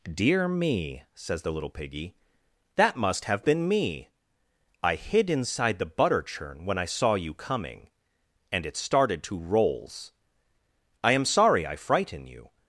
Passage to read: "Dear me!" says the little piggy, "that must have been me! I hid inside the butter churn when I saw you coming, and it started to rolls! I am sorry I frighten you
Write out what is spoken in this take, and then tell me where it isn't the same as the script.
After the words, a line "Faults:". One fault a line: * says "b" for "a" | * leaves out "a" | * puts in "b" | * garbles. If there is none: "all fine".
"Dear me!" says the little piggy, "that must have been me! I hid inside the butter churn when I saw you coming, and it started to rolls! I am sorry I frighten you
Faults:
all fine